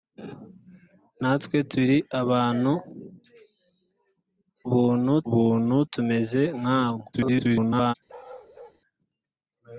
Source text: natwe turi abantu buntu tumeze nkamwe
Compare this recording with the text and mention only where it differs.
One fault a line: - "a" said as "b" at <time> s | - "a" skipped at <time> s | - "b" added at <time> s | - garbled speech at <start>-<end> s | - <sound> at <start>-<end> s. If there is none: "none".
- "buntu" added at 5.3 s
- garbled speech at 7.1-7.9 s
- bark at 8.1-8.8 s